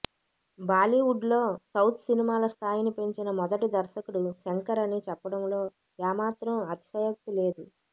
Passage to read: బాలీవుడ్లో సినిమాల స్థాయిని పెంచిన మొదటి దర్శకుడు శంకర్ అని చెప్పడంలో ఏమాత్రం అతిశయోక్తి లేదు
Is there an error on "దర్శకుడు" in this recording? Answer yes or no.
no